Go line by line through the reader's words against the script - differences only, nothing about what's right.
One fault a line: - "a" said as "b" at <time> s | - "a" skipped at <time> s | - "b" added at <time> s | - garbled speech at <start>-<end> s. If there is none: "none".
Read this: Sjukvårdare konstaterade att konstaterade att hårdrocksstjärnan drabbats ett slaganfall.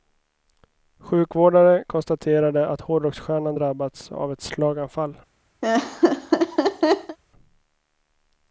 - "konstaterade att" skipped at 2.8 s
- "av" added at 4.1 s